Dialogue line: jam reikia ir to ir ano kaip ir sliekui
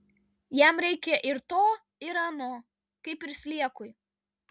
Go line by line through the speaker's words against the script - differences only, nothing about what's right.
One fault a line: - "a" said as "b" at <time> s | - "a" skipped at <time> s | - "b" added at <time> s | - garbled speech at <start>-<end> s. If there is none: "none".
none